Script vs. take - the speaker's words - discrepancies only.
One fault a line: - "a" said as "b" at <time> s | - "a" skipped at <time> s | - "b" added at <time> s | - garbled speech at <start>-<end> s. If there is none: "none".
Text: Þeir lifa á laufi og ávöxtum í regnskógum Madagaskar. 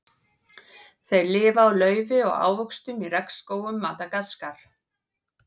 none